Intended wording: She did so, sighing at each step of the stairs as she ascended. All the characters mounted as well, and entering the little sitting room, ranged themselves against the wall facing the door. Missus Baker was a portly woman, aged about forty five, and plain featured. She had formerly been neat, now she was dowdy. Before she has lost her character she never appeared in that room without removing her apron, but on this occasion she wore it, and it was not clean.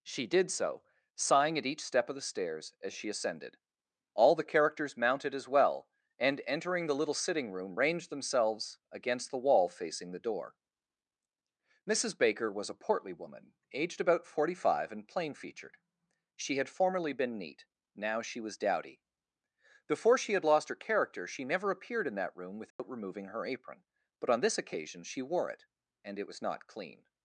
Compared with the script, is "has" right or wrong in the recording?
wrong